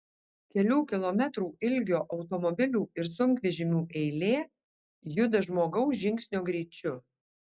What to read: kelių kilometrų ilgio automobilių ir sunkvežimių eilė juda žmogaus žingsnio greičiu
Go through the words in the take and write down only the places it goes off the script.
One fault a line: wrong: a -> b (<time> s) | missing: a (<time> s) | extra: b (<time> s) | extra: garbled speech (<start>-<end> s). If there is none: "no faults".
no faults